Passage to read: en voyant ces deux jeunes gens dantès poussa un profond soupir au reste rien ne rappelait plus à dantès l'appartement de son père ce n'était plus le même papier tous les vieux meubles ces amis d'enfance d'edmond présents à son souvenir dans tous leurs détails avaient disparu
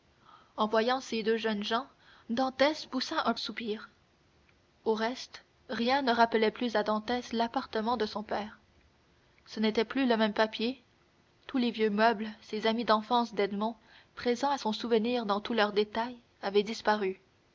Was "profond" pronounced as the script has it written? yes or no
no